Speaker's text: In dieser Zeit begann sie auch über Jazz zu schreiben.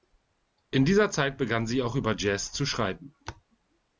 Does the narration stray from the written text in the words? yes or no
no